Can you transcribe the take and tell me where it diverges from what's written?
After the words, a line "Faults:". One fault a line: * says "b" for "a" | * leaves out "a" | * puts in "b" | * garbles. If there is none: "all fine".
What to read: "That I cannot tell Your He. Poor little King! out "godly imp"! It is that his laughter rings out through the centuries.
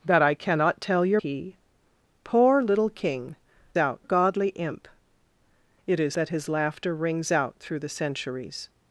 "That I cannot tell Your He. Poor little King! out "godly imp"! It is that his laughter rings out through the centuries.
Faults:
all fine